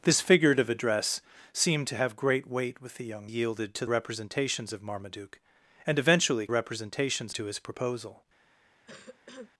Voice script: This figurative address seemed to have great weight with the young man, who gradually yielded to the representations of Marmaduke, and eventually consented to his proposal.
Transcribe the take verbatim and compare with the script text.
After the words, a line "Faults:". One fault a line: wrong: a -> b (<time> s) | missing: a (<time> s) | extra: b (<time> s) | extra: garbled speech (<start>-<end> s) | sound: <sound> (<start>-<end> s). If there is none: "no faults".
This figurative address seemed to have great weight with the young yielded to representations of Marmaduke, and eventually representations to his proposal.
Faults:
missing: man who gradually (3.3 s)
missing: the (3.8 s)
wrong: consented -> representations (6.5 s)
sound: cough (8.9-9.5 s)